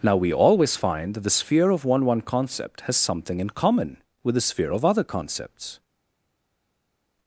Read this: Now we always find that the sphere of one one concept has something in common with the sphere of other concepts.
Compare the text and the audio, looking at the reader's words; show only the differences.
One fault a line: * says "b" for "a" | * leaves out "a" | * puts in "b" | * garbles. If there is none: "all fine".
all fine